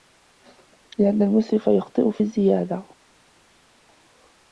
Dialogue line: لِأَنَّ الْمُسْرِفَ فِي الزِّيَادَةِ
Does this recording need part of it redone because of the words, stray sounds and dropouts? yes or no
yes